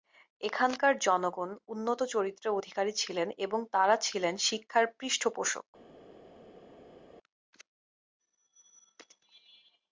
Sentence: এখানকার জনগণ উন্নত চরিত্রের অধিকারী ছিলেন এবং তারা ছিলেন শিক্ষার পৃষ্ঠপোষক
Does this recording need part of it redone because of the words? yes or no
no